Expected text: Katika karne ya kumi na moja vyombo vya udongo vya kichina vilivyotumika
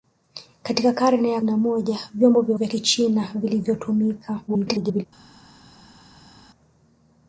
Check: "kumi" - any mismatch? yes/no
yes